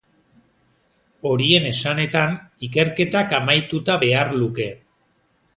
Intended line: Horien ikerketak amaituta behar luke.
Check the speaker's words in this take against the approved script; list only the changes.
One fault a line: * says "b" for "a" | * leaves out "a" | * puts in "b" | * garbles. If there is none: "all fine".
* puts in "esanetan"